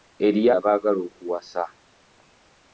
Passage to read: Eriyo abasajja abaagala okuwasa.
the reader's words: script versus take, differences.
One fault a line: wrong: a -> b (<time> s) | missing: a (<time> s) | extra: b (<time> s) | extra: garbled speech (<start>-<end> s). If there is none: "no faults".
missing: abasajja (0.5 s)